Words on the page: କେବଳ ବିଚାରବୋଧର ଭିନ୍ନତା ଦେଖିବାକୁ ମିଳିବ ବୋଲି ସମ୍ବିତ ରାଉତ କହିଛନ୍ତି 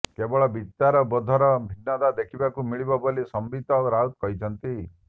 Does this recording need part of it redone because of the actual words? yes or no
no